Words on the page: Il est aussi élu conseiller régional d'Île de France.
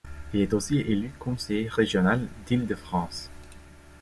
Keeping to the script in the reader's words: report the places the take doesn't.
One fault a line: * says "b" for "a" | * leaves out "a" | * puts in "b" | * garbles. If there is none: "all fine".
all fine